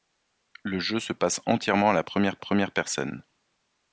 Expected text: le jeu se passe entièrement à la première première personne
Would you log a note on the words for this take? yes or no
no